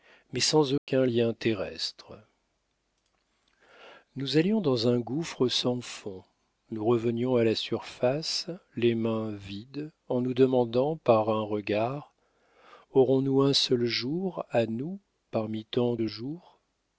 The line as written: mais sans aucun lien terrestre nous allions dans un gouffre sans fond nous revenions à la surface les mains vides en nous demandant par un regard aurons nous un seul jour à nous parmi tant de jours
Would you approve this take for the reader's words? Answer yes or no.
yes